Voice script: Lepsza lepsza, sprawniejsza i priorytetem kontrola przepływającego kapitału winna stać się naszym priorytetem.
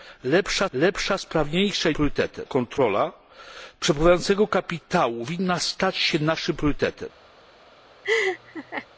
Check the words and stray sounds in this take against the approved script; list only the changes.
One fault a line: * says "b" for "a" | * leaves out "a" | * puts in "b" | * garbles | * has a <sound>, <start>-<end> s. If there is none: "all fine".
* has a laugh, 8.0-8.9 s